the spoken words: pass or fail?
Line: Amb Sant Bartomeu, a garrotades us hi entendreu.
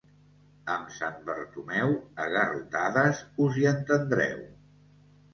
pass